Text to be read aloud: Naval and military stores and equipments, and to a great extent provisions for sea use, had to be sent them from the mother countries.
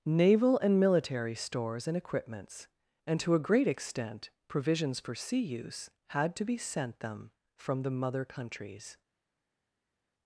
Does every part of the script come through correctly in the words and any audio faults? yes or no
yes